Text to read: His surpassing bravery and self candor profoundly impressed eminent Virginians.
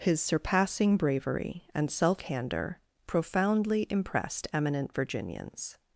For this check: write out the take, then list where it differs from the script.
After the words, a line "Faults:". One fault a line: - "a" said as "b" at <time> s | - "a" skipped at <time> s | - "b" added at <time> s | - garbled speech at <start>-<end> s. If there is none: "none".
His surpassing bravery and self candor profoundly impressed eminent Virginians.
Faults:
none